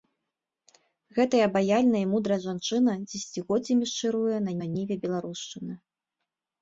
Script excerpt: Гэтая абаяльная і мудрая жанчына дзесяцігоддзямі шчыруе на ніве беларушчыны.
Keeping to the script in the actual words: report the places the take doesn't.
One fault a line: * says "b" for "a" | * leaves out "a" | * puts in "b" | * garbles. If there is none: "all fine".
* puts in "на"